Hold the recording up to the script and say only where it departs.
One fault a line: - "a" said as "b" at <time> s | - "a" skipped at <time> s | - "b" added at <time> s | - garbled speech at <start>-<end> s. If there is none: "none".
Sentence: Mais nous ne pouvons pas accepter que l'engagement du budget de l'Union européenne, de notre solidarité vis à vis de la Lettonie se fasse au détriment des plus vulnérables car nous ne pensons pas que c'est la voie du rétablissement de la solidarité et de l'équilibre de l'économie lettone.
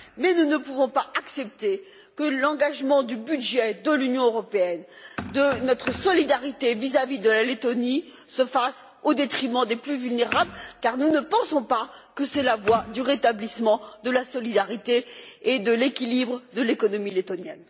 none